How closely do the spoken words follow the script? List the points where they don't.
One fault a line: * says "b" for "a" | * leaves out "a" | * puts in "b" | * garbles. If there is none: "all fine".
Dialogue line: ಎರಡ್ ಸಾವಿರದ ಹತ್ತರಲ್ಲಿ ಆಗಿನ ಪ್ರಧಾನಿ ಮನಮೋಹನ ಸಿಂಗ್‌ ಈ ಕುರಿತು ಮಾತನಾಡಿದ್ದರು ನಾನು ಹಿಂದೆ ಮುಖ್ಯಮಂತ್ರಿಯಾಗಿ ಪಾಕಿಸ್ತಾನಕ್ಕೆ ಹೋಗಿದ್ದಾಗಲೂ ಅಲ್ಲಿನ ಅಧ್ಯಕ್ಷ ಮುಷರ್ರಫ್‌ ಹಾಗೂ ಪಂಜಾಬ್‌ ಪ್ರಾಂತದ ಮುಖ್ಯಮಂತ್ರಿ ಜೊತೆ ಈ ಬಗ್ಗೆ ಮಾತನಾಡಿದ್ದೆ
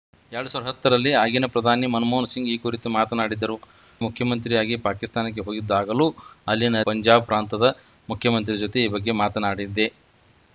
* leaves out "ನಾನು ಹಿಂದೆ"
* leaves out "ಅಧ್ಯಕ್ಷ ಮುಷರ್ರಫ್ ಹಾಗೂ"